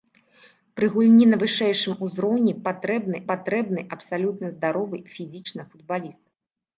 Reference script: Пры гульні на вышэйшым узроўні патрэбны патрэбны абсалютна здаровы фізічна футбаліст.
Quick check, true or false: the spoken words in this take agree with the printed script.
true